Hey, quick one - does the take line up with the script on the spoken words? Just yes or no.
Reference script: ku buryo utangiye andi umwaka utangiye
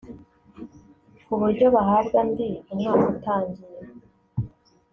no